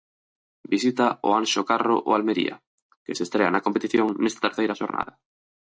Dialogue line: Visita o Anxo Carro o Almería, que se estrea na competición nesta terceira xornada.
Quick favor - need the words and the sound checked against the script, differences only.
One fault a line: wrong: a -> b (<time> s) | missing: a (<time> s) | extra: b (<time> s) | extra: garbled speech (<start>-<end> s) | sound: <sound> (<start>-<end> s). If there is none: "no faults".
no faults